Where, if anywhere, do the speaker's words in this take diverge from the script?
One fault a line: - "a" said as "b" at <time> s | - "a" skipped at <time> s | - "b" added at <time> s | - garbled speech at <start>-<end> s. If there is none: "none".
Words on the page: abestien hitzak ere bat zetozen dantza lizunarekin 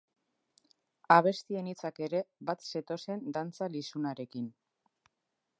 none